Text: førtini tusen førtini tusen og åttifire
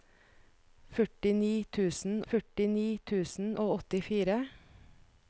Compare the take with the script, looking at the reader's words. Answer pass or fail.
pass